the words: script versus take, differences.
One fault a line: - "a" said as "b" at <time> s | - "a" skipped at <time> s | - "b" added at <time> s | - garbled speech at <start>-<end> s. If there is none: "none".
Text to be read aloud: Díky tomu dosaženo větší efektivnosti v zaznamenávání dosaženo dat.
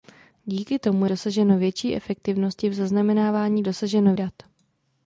none